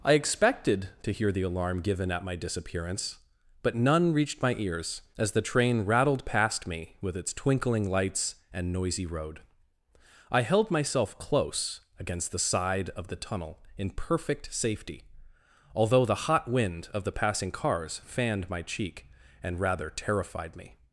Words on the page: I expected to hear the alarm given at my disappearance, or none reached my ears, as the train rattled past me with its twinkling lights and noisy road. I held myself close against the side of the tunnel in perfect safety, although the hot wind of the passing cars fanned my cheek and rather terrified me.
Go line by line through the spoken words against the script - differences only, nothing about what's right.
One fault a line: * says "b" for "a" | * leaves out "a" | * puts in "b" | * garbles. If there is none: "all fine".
* says "but" for "or"